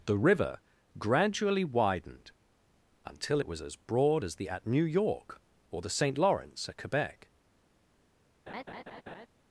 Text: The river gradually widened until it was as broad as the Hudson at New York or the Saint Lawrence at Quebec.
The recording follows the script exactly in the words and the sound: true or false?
false